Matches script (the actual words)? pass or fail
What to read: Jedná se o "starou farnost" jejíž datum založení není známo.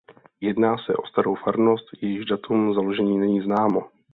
pass